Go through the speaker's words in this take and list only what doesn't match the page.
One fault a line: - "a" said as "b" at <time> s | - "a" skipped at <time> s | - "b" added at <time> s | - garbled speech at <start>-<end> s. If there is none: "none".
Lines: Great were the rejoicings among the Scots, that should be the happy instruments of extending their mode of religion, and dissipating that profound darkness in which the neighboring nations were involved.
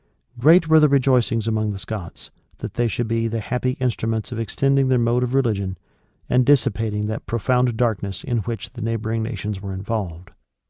- "they" added at 2.7 s